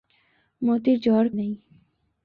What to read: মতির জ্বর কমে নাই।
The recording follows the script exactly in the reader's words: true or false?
false